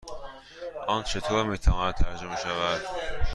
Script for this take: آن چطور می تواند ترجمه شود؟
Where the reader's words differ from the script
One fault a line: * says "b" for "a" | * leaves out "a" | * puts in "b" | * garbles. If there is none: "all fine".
all fine